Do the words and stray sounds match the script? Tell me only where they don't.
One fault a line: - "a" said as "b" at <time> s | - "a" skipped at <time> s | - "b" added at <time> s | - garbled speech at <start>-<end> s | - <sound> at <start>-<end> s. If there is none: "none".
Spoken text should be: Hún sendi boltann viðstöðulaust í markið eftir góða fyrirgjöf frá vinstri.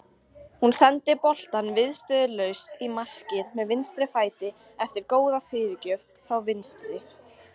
- "með vinstri fæti" added at 3.6 s